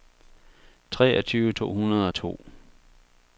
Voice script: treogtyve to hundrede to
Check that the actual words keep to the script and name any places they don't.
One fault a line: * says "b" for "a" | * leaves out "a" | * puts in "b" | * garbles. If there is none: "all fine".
all fine